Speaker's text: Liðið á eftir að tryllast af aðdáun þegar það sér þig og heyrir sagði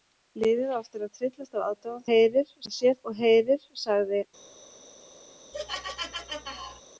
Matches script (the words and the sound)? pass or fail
fail